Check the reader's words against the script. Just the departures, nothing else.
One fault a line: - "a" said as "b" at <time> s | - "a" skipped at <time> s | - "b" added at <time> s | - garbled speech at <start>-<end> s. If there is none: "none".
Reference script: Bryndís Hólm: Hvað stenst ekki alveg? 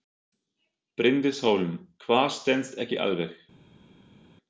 none